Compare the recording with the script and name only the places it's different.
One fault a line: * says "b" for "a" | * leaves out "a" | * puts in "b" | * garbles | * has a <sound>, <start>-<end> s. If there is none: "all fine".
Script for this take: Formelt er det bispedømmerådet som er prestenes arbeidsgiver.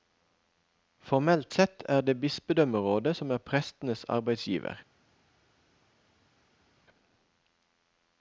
* puts in "sett"